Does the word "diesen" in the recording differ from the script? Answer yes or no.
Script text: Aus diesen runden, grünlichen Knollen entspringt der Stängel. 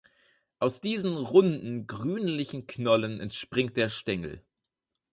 no